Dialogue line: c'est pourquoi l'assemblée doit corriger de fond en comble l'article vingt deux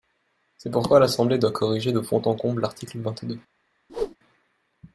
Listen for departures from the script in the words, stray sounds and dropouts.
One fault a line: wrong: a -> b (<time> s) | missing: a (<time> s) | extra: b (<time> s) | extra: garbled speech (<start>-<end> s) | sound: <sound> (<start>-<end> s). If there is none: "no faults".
sound: whoosh (3.9-4.2 s)